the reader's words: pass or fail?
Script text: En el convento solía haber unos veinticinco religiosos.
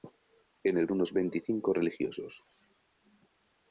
fail